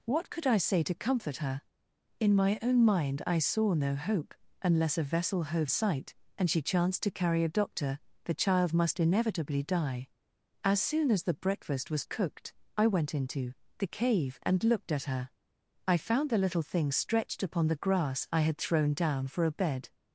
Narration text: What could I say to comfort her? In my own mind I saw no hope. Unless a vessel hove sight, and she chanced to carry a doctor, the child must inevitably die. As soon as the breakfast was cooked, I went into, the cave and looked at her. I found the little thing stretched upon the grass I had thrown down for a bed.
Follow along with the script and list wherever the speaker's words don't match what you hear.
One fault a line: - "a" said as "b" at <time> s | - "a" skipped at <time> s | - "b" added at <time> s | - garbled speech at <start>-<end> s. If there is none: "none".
none